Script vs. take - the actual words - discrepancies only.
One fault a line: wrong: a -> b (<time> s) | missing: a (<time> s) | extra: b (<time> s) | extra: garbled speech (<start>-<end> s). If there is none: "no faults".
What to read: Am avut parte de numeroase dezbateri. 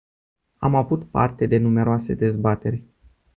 no faults